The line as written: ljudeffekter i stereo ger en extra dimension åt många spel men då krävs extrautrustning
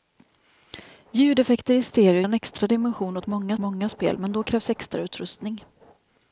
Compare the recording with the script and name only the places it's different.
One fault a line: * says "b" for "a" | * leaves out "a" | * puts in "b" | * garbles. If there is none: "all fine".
* leaves out "ger"
* puts in "många"